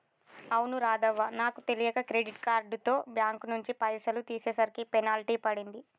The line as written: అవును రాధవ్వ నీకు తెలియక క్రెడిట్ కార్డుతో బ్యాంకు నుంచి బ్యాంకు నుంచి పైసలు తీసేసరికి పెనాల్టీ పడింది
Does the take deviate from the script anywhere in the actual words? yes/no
yes